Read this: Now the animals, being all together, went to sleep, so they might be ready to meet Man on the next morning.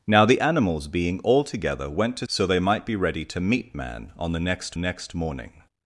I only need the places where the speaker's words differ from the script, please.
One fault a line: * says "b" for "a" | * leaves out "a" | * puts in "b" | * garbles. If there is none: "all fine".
* leaves out "sleep"
* puts in "next"